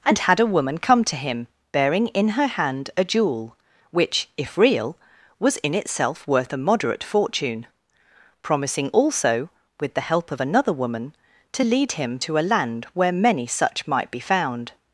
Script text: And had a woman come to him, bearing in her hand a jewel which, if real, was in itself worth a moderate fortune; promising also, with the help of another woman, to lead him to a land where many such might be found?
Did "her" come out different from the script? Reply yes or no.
no